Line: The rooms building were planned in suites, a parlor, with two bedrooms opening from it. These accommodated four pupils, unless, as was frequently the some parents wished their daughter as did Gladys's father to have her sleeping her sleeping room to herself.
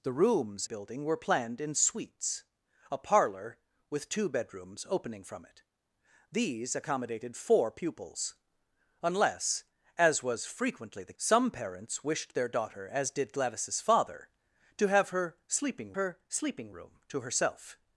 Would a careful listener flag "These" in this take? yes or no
no